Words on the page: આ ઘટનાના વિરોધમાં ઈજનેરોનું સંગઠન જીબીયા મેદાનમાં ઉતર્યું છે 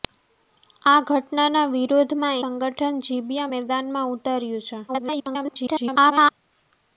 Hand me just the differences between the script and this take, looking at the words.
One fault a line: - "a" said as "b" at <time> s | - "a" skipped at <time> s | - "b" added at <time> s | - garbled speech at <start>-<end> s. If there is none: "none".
- "ઈજનેરોનું" skipped at 2.4 s
- garbled speech at 4.9-6.3 s